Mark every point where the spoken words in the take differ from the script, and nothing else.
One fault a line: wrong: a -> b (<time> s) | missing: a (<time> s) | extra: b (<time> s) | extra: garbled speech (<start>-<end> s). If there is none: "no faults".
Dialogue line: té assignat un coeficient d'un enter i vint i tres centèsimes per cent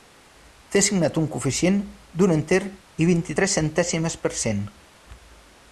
no faults